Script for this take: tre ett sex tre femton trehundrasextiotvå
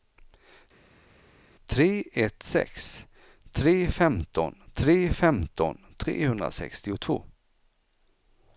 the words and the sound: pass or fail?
fail